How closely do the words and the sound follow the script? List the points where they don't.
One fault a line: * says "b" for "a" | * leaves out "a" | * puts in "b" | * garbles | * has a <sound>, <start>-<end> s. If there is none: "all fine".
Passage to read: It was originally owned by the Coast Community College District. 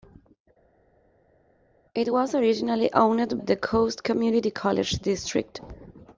* leaves out "by"